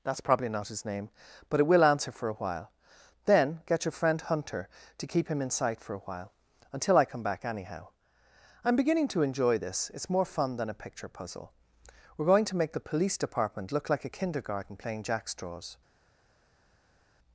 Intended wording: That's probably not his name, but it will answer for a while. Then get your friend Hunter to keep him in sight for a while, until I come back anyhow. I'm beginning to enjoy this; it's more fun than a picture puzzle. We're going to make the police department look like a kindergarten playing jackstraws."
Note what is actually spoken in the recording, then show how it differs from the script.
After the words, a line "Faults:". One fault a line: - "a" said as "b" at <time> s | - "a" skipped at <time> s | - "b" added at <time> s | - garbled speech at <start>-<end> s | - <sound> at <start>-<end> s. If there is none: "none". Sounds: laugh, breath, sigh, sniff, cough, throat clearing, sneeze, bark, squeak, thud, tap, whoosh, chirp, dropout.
That's probably not his name, but it will answer for a while. Then get your friend Hunter to keep him in sight for a while, until I come back anyhow. I'm beginning to enjoy this; it's more fun than a picture puzzle. We're going to make the police department look like a kindergarten playing jackstraws."
Faults:
none